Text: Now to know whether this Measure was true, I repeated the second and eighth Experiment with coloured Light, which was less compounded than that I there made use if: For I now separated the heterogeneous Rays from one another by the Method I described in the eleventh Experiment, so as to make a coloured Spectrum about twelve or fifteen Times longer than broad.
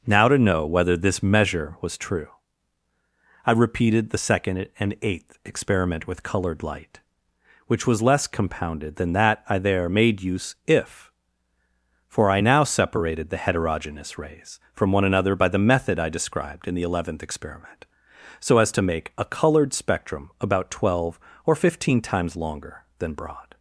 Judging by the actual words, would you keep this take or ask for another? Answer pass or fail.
pass